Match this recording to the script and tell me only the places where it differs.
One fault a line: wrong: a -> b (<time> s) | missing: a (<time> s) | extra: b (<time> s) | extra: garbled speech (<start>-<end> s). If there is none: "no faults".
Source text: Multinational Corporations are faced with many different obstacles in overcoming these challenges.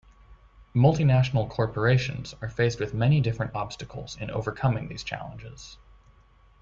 no faults